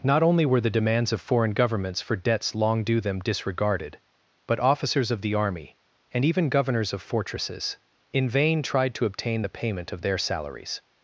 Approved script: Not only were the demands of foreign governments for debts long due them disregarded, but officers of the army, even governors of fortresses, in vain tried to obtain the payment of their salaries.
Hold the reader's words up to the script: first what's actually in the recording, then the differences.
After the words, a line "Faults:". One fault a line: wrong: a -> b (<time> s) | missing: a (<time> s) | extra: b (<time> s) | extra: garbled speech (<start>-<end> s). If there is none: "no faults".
Not only were the demands of foreign governments for debts long due them disregarded, but officers of the army, and even governors of fortresses, in vain tried to obtain the payment of their salaries.
Faults:
extra: and (6.1 s)